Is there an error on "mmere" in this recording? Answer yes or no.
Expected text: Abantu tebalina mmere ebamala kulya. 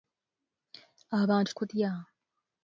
yes